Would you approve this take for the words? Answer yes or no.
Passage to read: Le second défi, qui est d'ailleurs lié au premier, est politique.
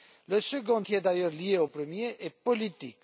no